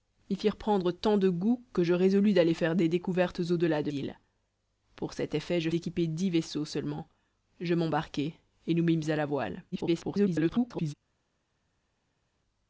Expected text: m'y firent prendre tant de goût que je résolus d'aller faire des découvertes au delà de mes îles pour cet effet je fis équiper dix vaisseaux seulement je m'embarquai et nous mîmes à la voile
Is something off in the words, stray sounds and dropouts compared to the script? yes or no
yes